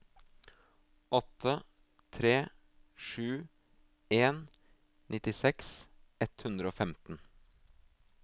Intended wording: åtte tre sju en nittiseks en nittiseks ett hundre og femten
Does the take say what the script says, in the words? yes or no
no